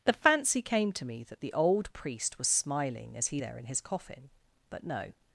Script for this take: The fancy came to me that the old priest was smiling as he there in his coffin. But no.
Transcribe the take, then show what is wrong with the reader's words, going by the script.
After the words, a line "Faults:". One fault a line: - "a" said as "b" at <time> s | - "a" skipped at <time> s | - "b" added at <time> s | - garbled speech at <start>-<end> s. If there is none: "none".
The fancy came to me that the old priest was smiling as he there in his coffin. But no.
Faults:
none